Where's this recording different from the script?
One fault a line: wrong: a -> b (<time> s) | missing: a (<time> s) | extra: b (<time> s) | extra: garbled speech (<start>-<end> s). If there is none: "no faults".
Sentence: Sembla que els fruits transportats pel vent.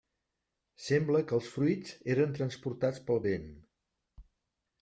extra: eren (2.1 s)